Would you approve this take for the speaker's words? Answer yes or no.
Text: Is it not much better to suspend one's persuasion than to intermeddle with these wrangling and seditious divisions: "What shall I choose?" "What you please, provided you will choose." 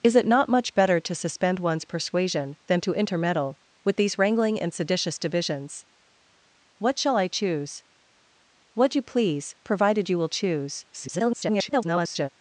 no